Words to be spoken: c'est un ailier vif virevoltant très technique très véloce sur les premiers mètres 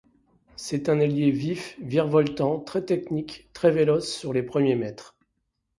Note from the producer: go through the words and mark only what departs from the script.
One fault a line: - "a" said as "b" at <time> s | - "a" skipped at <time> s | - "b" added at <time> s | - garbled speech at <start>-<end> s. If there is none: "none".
none